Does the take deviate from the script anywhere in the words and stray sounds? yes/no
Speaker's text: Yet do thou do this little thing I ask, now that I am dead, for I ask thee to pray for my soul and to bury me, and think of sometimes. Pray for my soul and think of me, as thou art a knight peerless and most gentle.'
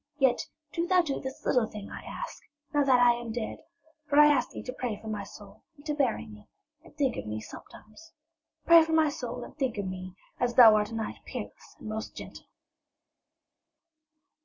yes